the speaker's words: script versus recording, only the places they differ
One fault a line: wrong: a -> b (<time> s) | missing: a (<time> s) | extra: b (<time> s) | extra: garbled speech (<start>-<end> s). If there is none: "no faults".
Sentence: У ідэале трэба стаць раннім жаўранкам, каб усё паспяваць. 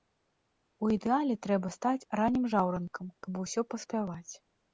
no faults